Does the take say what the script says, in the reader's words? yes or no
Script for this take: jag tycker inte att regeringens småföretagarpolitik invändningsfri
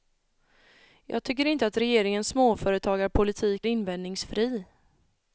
yes